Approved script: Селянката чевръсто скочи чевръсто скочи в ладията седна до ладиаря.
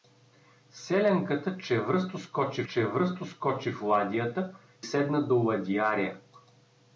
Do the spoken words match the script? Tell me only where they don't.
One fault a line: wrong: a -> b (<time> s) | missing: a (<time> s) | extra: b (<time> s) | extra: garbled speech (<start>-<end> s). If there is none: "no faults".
no faults